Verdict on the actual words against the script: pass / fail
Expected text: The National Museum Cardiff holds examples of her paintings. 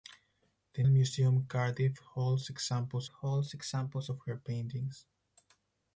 fail